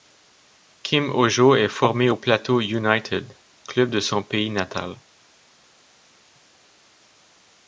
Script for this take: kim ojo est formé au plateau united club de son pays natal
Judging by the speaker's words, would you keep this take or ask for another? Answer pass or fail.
pass